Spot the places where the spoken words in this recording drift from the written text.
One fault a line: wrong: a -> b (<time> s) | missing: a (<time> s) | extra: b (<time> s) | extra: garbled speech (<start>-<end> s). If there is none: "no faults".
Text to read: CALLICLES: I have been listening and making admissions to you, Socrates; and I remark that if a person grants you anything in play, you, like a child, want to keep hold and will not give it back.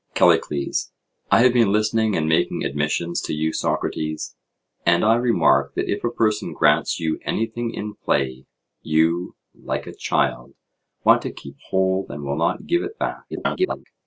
extra: garbled speech (13.3-13.8 s)